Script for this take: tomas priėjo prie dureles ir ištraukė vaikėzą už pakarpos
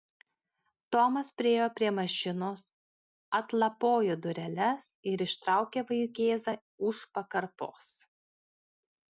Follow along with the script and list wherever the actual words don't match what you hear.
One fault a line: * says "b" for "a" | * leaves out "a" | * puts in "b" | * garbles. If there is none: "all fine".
* puts in "mašinos atlapojo"